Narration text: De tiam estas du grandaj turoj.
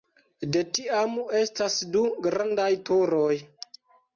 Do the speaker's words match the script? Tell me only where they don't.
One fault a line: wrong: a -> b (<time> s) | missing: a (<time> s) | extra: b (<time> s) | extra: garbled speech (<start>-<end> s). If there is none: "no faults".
no faults